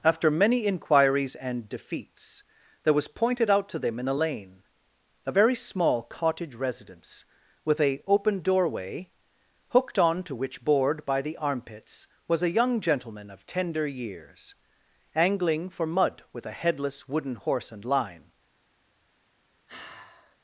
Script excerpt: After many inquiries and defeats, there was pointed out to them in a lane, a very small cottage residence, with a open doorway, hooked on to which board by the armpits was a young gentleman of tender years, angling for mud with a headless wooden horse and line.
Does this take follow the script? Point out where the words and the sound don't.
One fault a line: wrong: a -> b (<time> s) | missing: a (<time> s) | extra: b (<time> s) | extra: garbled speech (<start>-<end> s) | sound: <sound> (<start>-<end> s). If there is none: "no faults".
sound: sigh (19.7-20.4 s)